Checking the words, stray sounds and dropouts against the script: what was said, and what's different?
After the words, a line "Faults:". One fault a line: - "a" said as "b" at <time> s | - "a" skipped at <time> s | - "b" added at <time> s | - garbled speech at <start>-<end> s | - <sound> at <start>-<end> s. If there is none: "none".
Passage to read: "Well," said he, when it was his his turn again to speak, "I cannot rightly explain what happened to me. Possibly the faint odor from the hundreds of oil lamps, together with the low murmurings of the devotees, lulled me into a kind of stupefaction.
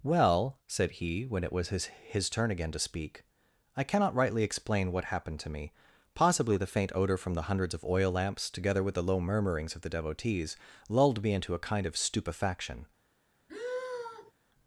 "Well," said he, when it was his his turn again to speak, "I cannot rightly explain what happened to me. Possibly the faint odor from the hundreds of oil lamps, together with the low murmurings of the devotees, lulled me into a kind of stupefaction.
Faults:
- sigh at 13.5-14.3 s